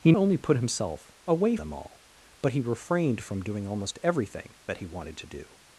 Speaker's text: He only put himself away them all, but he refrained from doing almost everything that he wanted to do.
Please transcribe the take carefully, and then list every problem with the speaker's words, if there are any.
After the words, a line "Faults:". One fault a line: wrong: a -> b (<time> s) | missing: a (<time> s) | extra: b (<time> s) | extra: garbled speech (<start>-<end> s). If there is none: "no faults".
He only put himself away them all, but he refrained from doing almost everything that he wanted to do.
Faults:
no faults